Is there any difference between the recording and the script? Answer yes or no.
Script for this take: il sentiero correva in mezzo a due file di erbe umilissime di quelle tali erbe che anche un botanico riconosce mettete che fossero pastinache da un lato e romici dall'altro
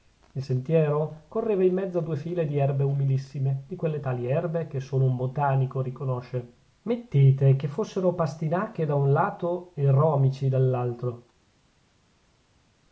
yes